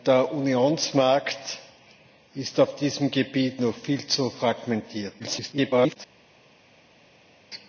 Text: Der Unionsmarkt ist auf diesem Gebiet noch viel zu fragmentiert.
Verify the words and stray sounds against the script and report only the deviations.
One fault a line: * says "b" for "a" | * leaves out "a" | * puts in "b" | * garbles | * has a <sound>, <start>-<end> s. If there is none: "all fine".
* garbles